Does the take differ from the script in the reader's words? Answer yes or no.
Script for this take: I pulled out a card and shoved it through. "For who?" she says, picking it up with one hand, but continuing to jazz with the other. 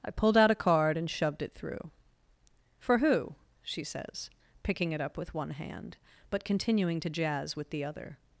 no